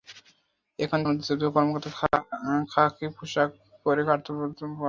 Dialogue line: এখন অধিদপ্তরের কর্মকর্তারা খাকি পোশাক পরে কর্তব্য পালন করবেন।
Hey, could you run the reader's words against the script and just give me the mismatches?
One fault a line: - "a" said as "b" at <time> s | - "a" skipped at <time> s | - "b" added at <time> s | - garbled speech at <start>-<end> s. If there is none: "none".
none